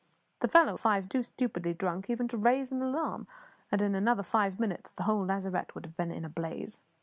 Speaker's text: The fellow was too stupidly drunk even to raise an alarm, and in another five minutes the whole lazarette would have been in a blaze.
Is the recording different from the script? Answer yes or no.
yes